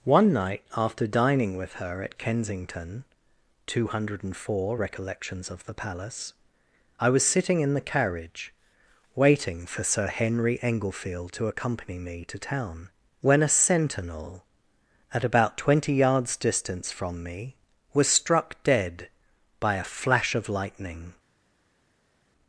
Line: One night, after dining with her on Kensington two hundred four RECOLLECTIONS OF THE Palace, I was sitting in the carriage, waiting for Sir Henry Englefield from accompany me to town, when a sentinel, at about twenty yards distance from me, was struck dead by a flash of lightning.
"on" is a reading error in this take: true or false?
true